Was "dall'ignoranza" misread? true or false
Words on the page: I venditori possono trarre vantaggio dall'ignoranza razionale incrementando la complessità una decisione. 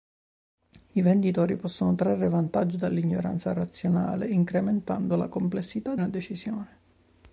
false